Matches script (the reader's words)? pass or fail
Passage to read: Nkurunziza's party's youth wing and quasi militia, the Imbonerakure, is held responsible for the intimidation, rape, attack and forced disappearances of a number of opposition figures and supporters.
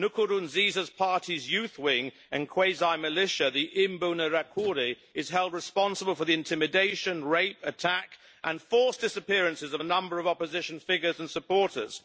pass